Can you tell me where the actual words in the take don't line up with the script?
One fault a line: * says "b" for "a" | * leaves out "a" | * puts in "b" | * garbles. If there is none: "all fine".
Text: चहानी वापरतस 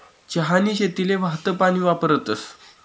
* puts in "शेतीले वाहतं पानी"